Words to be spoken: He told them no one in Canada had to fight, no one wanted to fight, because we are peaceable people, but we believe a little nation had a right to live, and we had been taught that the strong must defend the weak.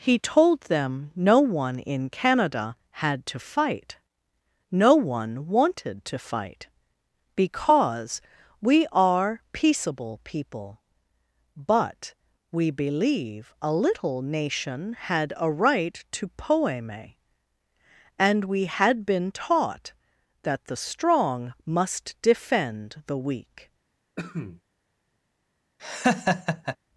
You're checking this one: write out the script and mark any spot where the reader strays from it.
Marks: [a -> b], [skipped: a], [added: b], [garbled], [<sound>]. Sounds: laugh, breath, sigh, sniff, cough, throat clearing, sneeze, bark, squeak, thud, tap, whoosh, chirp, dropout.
He told them no one in Canada had to fight, no one wanted to fight, because we are peaceable people, but we believe a little nation had a right to [live, -> poeme] and we had been taught that the strong must defend the weak. [cough] [laugh]